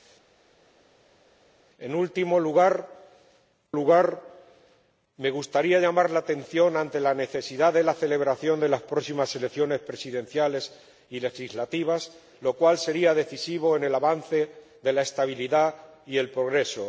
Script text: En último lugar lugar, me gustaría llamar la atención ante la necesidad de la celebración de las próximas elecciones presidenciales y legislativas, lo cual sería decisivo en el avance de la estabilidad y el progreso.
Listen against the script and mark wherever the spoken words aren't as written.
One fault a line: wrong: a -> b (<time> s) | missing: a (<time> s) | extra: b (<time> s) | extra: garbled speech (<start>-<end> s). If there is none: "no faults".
no faults